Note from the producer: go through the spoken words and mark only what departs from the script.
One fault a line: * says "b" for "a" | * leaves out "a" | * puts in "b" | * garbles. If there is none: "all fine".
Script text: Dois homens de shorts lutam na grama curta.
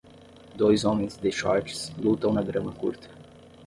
all fine